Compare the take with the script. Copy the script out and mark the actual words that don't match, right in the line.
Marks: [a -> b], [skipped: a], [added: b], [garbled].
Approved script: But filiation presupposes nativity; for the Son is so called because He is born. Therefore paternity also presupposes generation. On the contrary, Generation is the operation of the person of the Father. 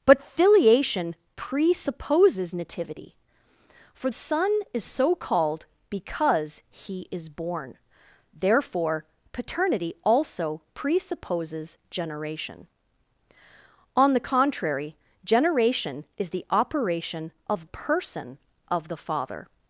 But filiation presupposes nativity; for [skipped: the] Son is so called because He is born. Therefore paternity also presupposes generation. On the contrary, Generation is the operation of [skipped: the] person of the Father.